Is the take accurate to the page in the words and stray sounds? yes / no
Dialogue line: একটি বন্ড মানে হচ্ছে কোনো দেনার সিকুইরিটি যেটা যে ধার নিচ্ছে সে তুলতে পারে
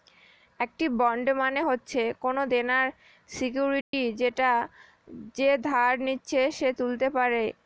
no